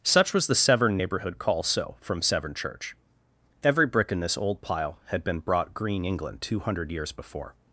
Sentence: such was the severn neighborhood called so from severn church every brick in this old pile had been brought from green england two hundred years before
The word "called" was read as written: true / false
false